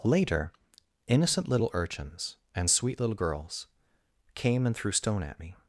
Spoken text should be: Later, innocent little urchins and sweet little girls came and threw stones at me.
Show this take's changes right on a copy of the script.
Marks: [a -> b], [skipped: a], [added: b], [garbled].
Later, innocent little urchins and sweet little girls came and threw [stones -> stone] at me.